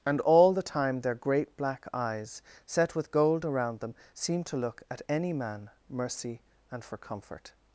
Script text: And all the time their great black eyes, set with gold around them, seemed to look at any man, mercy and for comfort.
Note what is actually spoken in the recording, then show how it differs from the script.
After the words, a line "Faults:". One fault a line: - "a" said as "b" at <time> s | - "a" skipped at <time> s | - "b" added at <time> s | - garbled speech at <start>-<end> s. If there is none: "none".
And all the time their great black eyes, set with gold around them, seemed to look at any man, mercy and for comfort.
Faults:
none